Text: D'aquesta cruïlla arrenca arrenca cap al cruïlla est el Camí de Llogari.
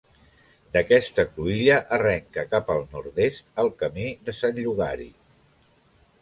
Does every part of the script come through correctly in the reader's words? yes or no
no